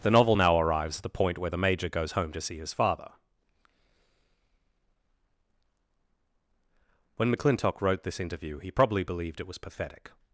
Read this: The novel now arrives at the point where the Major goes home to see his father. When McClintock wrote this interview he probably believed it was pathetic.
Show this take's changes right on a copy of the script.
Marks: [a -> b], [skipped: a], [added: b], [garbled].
The novel now arrives at the point where the Major goes home to see his father. When McClintock wrote this interview he probably believed it was pathetic.